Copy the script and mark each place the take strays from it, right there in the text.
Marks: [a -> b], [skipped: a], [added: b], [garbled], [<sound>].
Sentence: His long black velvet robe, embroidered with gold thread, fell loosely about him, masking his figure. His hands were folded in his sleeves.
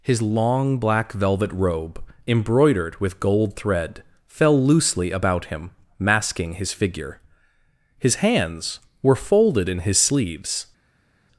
His long black velvet robe, embroidered with gold thread, fell loosely about him, masking his figure. His hands were folded in his sleeves.